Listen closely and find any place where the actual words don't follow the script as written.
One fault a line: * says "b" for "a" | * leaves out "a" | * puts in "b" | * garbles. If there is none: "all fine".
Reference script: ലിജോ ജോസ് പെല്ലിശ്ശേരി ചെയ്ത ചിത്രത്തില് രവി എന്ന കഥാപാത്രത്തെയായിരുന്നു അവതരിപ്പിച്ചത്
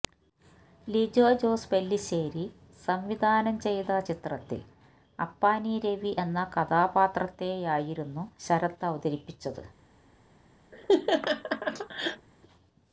* puts in "സംവിധാനം"
* puts in "അപ്പാനി"
* puts in "ശരത്"